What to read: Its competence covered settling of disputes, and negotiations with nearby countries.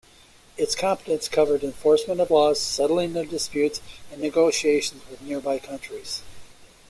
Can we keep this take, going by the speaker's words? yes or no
no